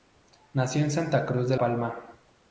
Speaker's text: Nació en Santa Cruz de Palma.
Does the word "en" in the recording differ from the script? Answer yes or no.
no